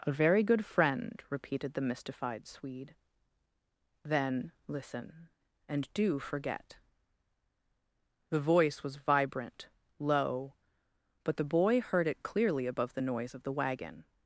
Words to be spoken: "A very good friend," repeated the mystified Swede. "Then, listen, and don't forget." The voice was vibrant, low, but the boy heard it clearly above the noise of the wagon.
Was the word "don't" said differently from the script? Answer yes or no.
yes